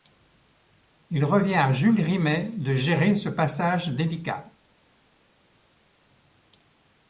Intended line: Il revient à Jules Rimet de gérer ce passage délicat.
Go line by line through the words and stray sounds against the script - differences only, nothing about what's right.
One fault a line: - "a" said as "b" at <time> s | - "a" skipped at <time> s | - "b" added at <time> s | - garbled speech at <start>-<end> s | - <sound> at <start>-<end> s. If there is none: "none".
none